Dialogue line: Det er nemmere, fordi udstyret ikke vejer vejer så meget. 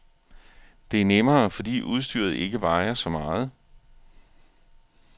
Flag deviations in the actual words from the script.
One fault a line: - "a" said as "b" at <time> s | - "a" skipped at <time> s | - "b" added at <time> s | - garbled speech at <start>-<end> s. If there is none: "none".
- "vejer" skipped at 2.9 s